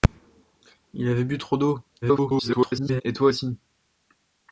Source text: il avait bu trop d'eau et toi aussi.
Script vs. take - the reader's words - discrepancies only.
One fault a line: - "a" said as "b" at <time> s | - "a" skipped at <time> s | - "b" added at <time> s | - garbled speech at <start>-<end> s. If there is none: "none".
- garbled speech at 2.0-3.0 s